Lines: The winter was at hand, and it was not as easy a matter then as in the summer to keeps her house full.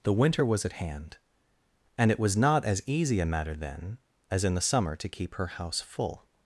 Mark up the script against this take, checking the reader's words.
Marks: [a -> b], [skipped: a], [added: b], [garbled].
The winter was at hand, and it was not as easy a matter then as in the summer to [keeps -> keep] her house full.